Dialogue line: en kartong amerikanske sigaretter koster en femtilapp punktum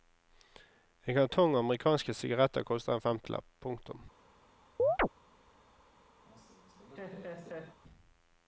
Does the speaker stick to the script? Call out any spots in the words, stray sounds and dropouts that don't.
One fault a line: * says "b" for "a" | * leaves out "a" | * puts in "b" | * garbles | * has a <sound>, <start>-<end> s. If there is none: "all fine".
* has a chirp, 4.8-5.1 s
* has a laugh, 6.2-7.8 s